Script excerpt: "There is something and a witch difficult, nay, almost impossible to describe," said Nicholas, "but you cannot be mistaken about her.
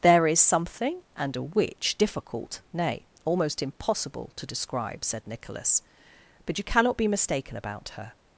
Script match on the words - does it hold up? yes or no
yes